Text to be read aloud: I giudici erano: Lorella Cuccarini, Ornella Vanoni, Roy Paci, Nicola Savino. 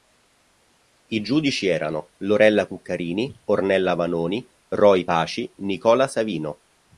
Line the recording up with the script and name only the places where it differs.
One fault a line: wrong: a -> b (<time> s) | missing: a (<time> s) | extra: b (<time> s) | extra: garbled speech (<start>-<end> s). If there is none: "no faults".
no faults